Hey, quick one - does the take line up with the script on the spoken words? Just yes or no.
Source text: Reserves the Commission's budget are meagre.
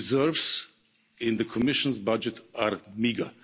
no